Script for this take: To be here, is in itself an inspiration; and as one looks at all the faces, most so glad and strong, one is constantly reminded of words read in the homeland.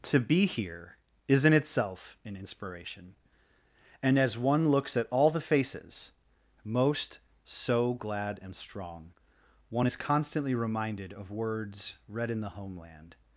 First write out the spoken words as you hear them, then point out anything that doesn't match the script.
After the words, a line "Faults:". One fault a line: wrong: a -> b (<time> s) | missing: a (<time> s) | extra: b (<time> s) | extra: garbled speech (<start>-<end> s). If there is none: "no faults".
To be here, is in itself an inspiration; and as one looks at all the faces, most so glad and strong, one is constantly reminded of words read in the homeland.
Faults:
no faults